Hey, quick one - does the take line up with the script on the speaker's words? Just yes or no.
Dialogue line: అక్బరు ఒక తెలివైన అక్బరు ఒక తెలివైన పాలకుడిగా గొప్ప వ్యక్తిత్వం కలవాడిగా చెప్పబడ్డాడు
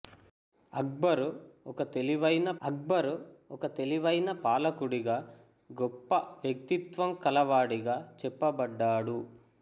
yes